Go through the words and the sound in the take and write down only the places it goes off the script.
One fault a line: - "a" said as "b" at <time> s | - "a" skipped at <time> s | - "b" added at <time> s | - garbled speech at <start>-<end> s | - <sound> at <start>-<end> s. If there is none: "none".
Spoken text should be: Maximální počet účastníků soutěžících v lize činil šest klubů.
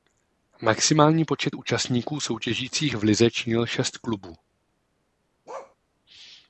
- bark at 5.5-5.8 s